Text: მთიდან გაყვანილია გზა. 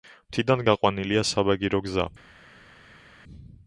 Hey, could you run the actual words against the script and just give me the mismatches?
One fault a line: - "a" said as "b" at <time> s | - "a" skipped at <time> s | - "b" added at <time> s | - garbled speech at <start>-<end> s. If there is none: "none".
- "საბაგირო" added at 1.3 s